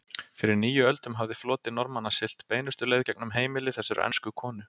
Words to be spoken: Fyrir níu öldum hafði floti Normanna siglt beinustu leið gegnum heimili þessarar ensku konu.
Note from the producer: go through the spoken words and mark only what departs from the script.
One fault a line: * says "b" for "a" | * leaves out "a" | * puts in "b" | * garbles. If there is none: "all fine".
all fine